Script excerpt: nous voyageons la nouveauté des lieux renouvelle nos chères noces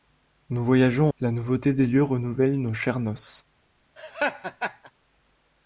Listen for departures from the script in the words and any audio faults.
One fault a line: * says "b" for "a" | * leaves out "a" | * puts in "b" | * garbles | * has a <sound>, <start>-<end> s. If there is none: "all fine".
* has a laugh, 4.0-4.9 s